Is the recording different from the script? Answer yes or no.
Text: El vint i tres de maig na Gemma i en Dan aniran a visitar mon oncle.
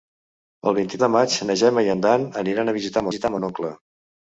yes